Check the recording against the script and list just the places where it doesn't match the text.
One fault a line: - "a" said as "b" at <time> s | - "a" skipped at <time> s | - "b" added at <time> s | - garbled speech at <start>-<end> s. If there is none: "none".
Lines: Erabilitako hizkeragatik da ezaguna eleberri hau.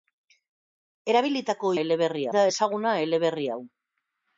- "hizkeragatik" said as "eleberri" at 1.8 s